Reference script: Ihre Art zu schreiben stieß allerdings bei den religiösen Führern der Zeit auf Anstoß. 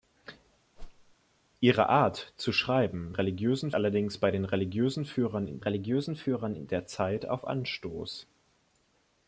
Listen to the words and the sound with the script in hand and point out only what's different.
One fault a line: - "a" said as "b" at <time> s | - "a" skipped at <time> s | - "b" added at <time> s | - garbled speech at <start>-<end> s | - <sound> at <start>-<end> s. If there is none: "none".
- whoosh at 0.8-1.2 s
- "stieß" said as "religiösen" at 3.1 s
- "religiösen Führern" added at 5.6 s